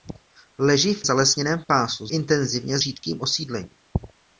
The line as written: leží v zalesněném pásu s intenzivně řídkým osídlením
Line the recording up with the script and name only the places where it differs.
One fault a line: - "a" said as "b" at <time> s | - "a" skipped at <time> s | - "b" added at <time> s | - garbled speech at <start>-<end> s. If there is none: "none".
none